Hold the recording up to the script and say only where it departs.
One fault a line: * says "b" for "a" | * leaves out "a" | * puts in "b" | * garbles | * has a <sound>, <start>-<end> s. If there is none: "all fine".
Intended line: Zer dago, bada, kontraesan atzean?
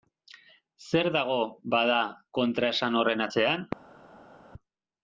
* puts in "horren"